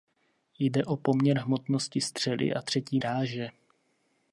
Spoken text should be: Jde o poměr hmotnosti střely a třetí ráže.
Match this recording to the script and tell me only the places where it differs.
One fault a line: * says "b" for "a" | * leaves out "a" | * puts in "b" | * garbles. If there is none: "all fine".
all fine